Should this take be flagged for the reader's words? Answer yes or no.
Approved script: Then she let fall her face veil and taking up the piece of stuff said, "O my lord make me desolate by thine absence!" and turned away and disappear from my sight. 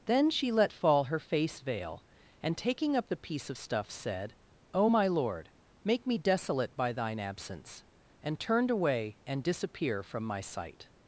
no